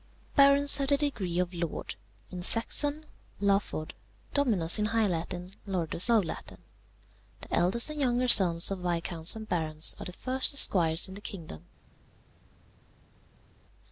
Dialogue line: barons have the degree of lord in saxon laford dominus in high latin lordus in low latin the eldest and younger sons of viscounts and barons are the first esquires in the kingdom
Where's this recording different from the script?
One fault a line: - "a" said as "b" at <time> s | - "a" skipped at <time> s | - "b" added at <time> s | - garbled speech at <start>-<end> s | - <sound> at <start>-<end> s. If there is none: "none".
- "in" skipped at 6.1 s